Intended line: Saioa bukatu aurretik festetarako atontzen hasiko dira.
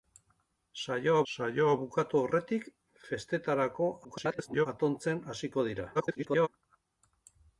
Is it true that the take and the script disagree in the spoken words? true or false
true